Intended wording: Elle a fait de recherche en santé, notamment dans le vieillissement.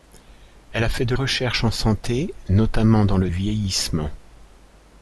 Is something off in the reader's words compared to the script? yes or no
no